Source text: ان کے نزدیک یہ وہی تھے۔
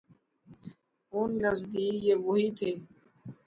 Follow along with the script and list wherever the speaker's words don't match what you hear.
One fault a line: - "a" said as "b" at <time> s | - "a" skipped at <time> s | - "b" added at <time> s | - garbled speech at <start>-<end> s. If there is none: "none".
- "کے" skipped at 1.3 s